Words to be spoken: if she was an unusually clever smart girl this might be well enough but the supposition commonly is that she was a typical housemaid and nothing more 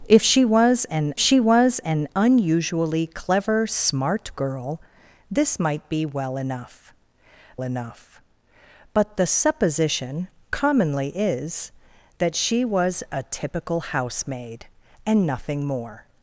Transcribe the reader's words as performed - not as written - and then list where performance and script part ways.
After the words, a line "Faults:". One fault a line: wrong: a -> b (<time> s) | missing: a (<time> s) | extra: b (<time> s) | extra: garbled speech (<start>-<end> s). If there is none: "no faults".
if she was an she was an unusually clever smart girl this might be well enough enough but the supposition commonly is that she was a typical housemaid and nothing more
Faults:
extra: she was an (1.2 s)
extra: enough (7.6 s)